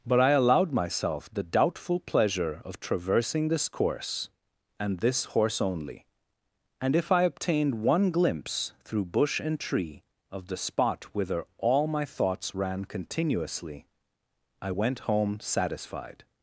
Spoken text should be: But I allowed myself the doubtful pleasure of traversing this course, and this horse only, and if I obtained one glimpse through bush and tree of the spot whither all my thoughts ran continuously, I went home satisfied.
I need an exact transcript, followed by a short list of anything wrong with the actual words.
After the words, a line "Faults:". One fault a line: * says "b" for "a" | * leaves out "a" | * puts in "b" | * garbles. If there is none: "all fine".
But I allowed myself the doubtful pleasure of traversing this course, and this horse only, and if I obtained one glimpse through bush and tree of the spot whither all my thoughts ran continuously, I went home satisfied.
Faults:
all fine